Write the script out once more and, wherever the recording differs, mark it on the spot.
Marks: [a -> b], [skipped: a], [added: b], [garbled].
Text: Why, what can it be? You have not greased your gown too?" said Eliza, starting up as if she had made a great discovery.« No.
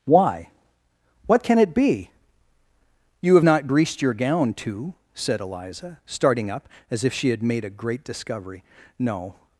Why, what can it be? You have not greased your gown too?" said Eliza, starting up as if she had made a great discovery.« No.